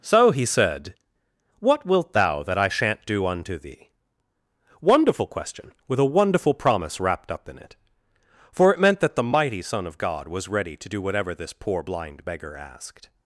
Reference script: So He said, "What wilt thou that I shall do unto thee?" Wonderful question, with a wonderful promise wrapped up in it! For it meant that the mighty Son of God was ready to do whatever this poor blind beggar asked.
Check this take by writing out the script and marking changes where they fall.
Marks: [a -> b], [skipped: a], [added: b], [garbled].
So He said, "What wilt thou that I [shall -> shan't] do unto thee?" Wonderful question, with a wonderful promise wrapped up in it! For it meant that the mighty Son of God was ready to do whatever this poor blind beggar asked.